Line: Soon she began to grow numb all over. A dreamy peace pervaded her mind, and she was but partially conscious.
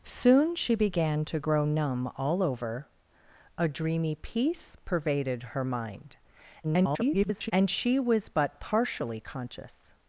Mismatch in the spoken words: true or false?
true